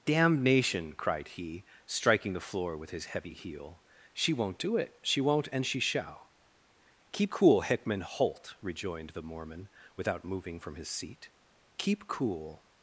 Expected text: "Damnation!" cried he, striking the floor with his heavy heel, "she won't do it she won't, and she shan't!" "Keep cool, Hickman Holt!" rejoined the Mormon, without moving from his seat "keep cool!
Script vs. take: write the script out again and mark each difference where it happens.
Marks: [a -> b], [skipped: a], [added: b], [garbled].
"Damnation!" cried he, striking the floor with his heavy heel, "she won't do it she won't, and she [shan't!" -> shall] "Keep cool, Hickman Holt!" rejoined the Mormon, without moving from his seat "keep cool!